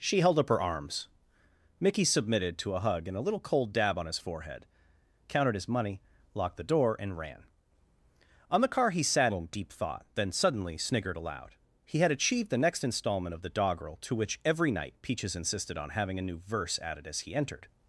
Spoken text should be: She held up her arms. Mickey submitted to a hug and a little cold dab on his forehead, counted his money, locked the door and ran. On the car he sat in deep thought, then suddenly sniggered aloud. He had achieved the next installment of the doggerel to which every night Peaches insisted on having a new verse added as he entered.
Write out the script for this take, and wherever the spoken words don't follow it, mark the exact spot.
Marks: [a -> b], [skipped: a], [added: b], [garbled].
She held up her arms. Mickey submitted to a hug and a little cold dab on his forehead, counted his money, locked the door and ran. On the car he sat in deep thought, then suddenly sniggered aloud. He had achieved the next installment of the doggerel to which every night Peaches insisted on having a new verse added as he entered.